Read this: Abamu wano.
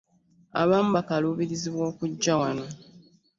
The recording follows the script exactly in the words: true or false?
false